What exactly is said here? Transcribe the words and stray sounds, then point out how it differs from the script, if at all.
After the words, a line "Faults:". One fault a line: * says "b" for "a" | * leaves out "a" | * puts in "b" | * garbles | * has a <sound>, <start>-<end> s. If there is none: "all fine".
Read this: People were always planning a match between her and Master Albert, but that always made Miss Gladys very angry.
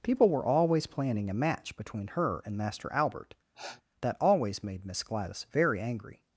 People were always planning a match between her and Master Albert, that always made Miss Gladys very angry.
Faults:
* leaves out "but"
* has a sniff, 3.5-3.8 s